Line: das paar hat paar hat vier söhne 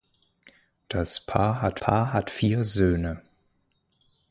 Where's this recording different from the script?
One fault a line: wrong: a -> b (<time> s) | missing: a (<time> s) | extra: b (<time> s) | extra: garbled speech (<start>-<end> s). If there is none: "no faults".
no faults